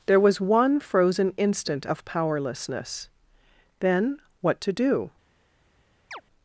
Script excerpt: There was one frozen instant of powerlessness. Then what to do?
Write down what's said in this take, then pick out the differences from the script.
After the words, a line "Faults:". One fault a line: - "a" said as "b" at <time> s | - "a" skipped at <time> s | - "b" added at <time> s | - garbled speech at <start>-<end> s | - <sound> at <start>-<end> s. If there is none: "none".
There was one frozen instant of powerlessness. Then what to do?
Faults:
- chirp at 6.1-6.2 s